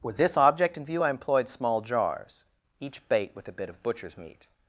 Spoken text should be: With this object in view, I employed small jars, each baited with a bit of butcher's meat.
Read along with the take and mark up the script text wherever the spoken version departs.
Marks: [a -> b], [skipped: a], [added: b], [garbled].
With this object in view, I employed small jars, each [baited -> bait] with a bit of butcher's meat.